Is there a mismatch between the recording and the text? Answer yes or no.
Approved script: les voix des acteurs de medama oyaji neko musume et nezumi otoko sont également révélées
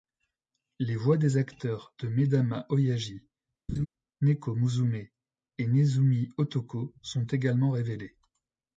no